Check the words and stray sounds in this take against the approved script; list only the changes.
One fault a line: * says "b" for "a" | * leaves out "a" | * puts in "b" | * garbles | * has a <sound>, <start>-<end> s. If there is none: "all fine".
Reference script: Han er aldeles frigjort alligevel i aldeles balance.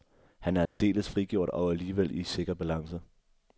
* has a dropout, 0.7-0.8 s
* puts in "og"
* says "sikker" for "aldeles"